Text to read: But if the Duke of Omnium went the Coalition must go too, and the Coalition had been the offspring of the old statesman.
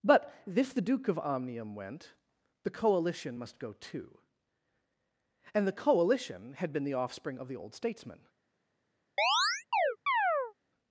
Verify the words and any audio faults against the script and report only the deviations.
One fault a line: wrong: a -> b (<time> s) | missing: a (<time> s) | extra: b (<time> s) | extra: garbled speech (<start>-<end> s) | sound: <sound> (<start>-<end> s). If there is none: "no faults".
sound: chirp (9.2-10.5 s)